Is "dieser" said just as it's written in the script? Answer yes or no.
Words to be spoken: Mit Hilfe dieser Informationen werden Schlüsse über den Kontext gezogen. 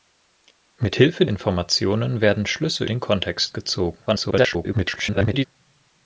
no